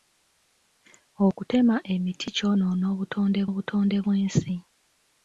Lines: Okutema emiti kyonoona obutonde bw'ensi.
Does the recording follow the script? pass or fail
fail